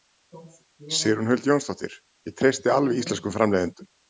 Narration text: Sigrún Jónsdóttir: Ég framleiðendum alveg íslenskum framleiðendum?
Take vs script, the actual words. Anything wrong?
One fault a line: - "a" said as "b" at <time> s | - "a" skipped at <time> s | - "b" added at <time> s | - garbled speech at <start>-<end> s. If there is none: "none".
- "Huld" added at 1.3 s
- "framleiðendum" said as "treysti" at 2.4 s